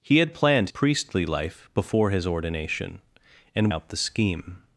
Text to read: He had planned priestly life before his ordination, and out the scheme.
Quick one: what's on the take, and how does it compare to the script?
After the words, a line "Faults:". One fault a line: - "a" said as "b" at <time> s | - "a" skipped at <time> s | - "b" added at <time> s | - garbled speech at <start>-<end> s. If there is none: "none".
He had planned priestly life before his ordination, and out the scheme.
Faults:
none